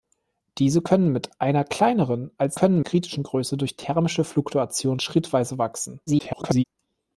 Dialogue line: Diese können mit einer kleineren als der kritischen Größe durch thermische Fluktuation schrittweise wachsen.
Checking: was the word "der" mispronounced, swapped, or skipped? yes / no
yes